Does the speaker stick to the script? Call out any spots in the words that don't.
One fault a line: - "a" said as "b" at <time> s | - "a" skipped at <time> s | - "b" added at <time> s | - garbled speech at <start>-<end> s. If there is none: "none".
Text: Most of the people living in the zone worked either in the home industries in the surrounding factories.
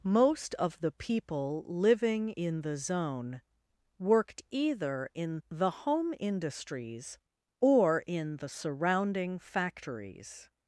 - "or" added at 7.6 s